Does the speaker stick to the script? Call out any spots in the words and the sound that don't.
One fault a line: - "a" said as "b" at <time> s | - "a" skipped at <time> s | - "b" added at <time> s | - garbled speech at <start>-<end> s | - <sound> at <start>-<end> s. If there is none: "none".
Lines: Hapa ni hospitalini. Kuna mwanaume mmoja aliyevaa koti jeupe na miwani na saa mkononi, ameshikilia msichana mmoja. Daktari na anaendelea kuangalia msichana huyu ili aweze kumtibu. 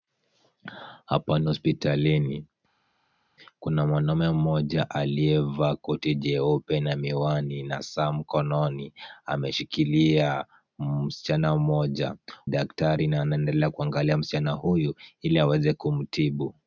none